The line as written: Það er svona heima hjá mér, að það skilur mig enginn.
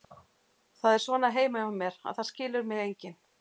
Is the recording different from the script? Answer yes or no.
no